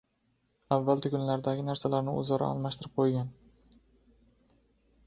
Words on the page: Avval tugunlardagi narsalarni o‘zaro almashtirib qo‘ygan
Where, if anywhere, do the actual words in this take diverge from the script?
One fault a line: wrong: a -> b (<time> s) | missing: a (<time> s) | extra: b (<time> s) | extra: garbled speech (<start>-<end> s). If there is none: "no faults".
no faults